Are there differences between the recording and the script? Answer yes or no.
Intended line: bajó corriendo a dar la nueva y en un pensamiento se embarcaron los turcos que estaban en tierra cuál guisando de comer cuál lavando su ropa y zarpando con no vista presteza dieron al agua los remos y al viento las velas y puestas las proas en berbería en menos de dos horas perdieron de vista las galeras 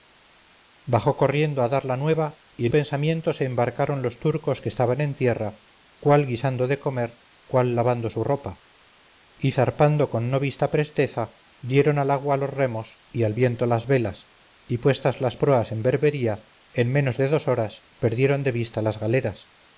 yes